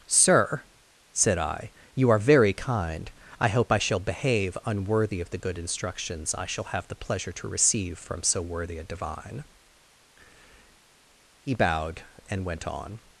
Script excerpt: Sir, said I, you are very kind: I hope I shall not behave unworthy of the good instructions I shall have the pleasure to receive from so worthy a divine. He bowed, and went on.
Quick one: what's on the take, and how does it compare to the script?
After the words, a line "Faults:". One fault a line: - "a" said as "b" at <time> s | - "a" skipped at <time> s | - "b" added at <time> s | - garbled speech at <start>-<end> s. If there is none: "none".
Sir, said I, you are very kind: I hope I shall behave unworthy of the good instructions I shall have the pleasure to receive from so worthy a divine. He bowed, and went on.
Faults:
- "not" skipped at 4.0 s